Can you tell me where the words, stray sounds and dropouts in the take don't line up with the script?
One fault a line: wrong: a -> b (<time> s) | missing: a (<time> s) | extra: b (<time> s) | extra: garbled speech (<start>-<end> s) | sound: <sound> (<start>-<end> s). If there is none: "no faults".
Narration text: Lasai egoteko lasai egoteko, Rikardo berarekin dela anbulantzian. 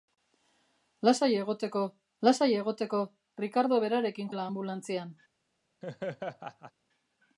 sound: laugh (5.8-6.7 s)